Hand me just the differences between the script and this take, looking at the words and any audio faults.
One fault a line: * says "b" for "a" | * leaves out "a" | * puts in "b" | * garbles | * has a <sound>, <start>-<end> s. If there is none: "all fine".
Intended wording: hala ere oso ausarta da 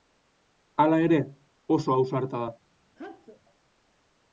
* has a sneeze, 3.0-3.4 s